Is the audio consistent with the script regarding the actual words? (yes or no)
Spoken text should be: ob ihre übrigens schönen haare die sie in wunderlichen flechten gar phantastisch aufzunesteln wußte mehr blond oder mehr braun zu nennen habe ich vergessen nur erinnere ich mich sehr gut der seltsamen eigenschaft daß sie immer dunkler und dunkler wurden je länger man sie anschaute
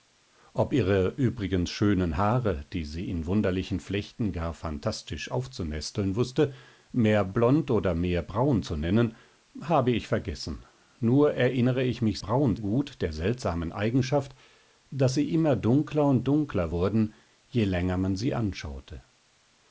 no